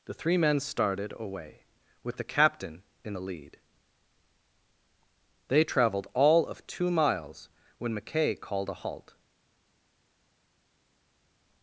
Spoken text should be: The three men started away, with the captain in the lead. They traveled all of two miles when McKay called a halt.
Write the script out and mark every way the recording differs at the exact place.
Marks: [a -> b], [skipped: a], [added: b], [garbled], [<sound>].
The three men started away, with the captain in the lead. They traveled all of two miles when McKay called a halt.